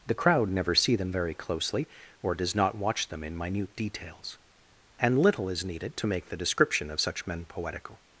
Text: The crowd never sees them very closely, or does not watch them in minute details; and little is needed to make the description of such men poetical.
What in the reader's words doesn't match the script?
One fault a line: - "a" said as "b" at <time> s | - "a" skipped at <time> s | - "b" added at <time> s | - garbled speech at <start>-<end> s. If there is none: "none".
- "sees" said as "see" at 0.8 s